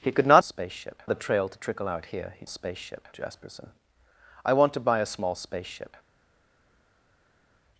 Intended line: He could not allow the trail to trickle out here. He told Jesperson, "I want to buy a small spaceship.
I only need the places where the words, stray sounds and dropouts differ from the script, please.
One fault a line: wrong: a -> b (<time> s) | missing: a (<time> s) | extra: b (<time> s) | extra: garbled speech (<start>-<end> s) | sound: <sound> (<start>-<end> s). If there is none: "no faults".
wrong: allow -> spaceship (0.4 s)
wrong: told -> spaceship (2.5 s)